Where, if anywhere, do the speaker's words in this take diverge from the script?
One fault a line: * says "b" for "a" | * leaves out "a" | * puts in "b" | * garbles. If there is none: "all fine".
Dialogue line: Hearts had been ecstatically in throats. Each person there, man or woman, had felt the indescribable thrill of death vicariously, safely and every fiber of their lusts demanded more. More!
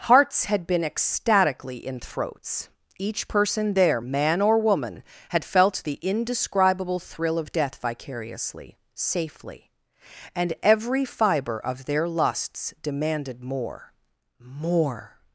all fine